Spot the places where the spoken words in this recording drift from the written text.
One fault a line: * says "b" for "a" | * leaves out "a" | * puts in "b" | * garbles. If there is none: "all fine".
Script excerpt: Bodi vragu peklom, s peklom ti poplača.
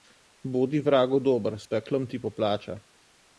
* says "dober" for "peklom"